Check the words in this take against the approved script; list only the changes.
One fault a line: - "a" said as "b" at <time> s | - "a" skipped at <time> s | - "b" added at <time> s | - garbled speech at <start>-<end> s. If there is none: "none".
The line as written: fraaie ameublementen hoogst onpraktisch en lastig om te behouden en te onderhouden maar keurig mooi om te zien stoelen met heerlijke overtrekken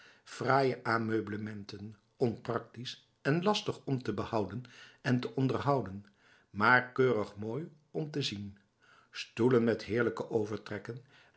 - "hoogst" skipped at 2.0 s